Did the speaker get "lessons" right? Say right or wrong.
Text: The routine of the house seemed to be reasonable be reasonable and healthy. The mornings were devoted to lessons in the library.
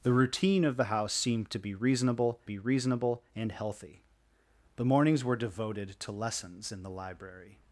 right